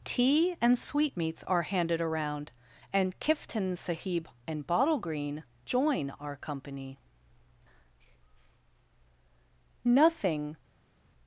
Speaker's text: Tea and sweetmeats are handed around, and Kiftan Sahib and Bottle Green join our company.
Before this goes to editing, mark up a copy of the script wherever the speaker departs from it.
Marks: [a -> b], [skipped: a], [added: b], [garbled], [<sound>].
Tea and sweetmeats are handed around, and Kiftan Sahib and Bottle Green join our company. [added: Nothing]